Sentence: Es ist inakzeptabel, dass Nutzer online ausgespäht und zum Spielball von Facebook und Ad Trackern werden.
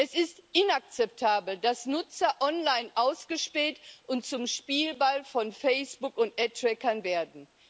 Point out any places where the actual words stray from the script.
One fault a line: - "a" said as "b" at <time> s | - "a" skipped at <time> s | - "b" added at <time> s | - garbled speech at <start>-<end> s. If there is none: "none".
none